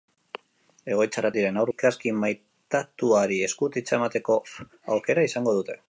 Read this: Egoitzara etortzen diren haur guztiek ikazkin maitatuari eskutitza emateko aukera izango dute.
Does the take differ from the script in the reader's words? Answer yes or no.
yes